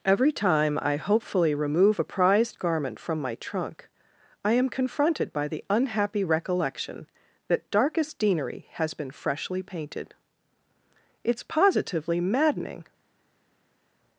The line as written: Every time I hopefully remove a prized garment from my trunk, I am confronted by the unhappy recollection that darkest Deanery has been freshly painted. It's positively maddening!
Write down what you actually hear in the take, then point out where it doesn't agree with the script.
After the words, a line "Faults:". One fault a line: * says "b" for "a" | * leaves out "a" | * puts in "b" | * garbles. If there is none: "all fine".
Every time I hopefully remove a prized garment from my trunk, I am confronted by the unhappy recollection that darkest Deanery has been freshly painted. It's positively maddening!
Faults:
all fine